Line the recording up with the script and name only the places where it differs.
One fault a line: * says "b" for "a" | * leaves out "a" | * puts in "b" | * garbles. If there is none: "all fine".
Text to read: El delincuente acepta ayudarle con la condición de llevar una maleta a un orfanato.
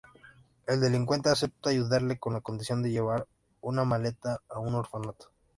all fine